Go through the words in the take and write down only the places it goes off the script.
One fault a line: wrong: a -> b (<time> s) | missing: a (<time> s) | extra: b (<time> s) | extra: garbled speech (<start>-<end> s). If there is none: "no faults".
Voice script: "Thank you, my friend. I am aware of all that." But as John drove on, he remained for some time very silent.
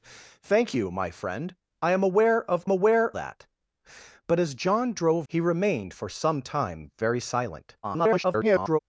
wrong: all -> aware (2.7 s)
missing: on (5.3 s)
extra: garbled speech (7.8-8.8 s)